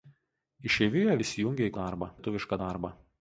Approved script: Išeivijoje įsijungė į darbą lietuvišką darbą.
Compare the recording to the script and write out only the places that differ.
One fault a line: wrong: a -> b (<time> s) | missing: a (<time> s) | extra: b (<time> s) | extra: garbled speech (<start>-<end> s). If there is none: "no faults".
no faults